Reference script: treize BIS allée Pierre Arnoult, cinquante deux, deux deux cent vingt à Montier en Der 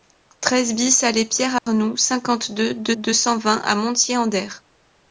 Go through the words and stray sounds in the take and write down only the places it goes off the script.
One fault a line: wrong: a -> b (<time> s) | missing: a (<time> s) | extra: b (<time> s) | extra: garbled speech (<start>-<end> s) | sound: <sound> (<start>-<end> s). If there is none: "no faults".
sound: dropout (1.6-1.7 s)